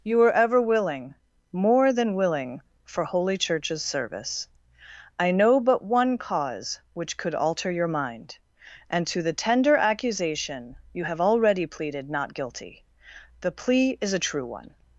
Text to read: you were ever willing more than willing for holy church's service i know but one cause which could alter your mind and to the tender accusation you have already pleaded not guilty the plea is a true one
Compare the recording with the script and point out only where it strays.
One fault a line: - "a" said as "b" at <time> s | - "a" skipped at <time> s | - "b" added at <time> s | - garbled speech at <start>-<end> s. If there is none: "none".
none